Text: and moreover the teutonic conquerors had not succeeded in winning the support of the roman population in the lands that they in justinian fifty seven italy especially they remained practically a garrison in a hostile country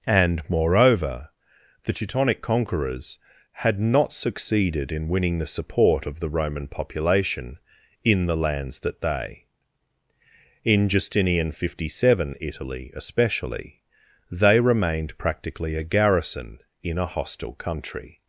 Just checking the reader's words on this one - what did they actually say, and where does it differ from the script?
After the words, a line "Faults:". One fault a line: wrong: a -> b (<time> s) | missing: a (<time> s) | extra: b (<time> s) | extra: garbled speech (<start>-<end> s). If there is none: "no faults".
and moreover the teutonic conquerors had not succeeded in winning the support of the roman population in the lands that they in justinian fifty seven italy especially they remained practically a garrison in a hostile country
Faults:
no faults